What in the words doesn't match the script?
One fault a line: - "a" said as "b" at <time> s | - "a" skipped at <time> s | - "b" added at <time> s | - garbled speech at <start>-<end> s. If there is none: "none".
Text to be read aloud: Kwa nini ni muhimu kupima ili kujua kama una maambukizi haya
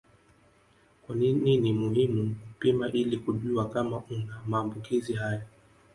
none